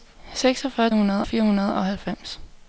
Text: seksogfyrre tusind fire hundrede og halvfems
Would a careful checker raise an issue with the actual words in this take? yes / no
yes